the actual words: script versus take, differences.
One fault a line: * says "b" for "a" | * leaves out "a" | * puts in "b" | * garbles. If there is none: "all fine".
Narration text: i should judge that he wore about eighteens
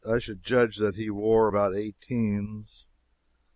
all fine